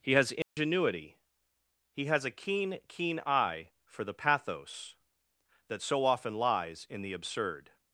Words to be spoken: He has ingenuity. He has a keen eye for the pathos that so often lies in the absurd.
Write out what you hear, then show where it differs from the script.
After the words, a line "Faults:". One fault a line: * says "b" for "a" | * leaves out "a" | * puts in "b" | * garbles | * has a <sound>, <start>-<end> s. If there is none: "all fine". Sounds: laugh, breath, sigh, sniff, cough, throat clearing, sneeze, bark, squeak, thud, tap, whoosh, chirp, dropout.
He has ingenuity. He has a keen keen eye for the pathos that so often lies in the absurd.
Faults:
* has a dropout, 0.4-0.6 s
* puts in "keen"